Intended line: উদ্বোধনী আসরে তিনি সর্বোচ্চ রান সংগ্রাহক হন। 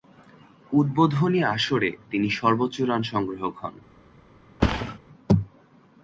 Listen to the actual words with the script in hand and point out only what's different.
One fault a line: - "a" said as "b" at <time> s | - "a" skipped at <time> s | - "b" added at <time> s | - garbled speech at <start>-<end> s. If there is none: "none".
none